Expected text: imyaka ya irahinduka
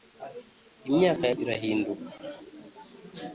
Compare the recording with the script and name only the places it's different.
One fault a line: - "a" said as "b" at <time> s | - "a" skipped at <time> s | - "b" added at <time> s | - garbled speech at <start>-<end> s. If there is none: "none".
none